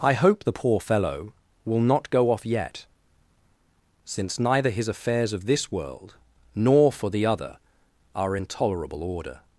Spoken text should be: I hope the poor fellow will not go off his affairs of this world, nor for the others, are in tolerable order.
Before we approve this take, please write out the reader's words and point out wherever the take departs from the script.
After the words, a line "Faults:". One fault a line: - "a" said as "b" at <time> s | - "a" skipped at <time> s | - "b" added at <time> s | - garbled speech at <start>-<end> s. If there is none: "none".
I hope the poor fellow will not go off yet; since neither his affairs of this world, nor for the other, are in tolerable order.
Faults:
- "yet since neither" added at 2.4 s
- "others" said as "other" at 7.2 s